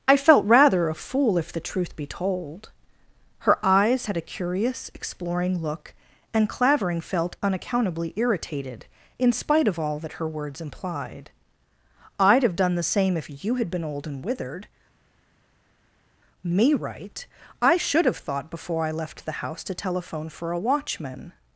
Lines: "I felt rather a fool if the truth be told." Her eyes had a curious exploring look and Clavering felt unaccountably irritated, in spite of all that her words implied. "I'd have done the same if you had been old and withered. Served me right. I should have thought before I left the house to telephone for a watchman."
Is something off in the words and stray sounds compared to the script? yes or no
yes